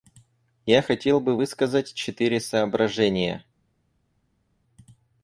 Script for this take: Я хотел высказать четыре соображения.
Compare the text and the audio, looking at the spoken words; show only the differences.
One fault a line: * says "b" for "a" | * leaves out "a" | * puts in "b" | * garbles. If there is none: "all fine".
* puts in "бы"